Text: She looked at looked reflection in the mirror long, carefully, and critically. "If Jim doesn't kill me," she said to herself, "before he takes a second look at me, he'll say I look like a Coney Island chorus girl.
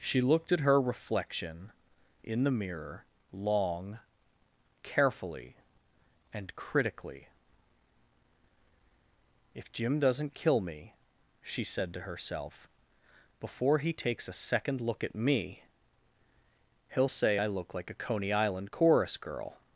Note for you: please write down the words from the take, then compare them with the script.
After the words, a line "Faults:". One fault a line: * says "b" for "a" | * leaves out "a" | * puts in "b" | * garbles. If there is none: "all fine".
She looked at her reflection in the mirror long, carefully, and critically. "If Jim doesn't kill me," she said to herself, "before he takes a second look at me, he'll say I look like a Coney Island chorus girl.
Faults:
* says "her" for "looked"